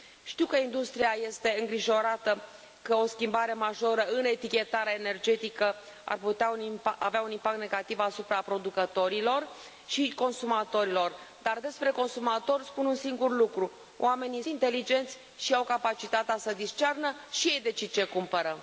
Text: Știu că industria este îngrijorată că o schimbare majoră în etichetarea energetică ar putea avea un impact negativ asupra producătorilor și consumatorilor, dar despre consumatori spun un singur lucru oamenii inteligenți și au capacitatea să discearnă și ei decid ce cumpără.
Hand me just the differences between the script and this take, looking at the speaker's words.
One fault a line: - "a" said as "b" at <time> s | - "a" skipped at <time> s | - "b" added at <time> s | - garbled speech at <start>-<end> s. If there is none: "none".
none